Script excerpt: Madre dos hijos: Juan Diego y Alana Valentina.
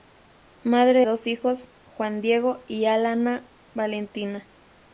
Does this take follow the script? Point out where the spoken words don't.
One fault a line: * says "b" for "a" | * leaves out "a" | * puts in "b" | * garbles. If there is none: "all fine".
all fine